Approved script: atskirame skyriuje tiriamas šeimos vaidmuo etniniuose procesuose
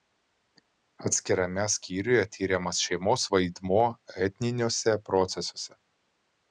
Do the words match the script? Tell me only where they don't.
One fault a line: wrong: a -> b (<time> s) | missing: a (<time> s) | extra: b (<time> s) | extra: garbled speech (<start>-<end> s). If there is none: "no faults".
no faults